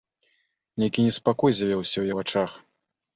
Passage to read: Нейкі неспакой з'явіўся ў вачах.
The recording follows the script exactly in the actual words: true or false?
true